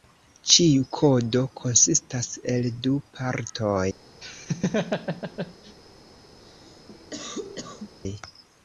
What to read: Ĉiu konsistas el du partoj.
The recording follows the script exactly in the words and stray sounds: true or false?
false